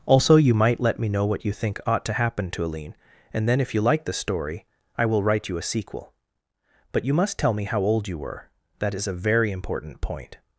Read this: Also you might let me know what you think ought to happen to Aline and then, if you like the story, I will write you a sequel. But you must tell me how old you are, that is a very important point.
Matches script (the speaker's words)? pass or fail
fail